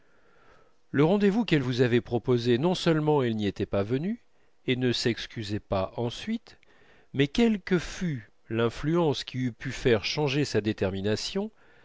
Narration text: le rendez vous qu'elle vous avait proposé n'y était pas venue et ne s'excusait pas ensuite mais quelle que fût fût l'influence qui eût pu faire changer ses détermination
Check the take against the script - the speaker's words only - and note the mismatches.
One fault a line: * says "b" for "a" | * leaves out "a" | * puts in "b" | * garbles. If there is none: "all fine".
* puts in "non seulement elle"
* leaves out "fût"
* says "sa" for "ses"